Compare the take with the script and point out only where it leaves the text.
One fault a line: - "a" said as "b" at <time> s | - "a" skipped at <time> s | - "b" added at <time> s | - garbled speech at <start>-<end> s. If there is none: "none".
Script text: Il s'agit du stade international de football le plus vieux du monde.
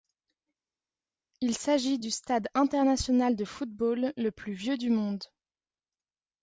none